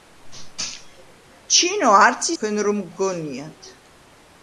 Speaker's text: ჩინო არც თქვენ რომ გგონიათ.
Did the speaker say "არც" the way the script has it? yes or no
yes